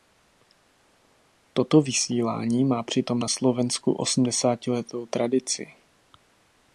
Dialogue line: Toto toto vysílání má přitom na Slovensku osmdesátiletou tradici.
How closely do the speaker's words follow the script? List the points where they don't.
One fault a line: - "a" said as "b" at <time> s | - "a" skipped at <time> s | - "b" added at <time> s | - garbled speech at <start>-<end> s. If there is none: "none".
- "toto" skipped at 1.8 s